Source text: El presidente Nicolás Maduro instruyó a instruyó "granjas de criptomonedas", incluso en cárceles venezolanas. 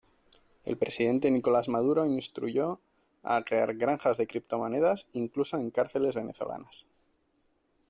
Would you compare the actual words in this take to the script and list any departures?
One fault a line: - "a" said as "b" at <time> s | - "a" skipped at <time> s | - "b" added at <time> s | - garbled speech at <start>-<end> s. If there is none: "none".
- "instruyó" said as "crear" at 3.4 s